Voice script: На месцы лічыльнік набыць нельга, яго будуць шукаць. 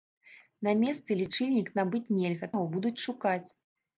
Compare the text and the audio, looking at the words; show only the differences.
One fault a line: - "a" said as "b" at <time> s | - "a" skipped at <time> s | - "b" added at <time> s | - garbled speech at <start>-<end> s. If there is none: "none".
none